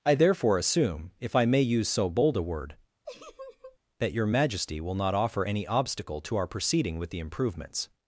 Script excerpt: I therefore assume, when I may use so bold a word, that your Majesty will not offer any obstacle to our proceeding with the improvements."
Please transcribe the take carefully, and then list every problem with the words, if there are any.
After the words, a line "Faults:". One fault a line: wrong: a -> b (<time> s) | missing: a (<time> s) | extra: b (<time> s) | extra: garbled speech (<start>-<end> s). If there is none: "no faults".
I therefore assume, if I may use so bold a word, that your Majesty will not offer any obstacle to our proceeding with the improvements."
Faults:
wrong: when -> if (1.2 s)